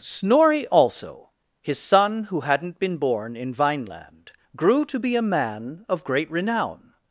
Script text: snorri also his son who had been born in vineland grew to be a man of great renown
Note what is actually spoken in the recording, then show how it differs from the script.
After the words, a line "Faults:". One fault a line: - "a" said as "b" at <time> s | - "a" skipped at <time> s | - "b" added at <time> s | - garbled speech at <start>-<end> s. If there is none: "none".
snorri also his son who hadn't been born in vineland grew to be a man of great renown
Faults:
- "had" said as "hadn't" at 2.4 s